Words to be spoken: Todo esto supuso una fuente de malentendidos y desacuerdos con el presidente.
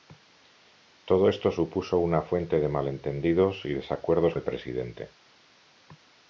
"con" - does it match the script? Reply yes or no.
no